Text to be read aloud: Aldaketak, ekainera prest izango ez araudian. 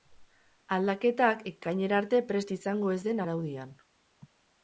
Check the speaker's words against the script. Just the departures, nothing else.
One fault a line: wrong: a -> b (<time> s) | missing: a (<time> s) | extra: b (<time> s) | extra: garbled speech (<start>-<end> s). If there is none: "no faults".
extra: arte (2.0 s)
extra: den (3.1 s)